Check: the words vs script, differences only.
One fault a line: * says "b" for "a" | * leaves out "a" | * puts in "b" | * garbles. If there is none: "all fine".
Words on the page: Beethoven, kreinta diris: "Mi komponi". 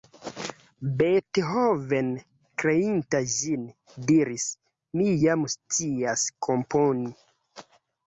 * puts in "ĝin"
* puts in "jam scias"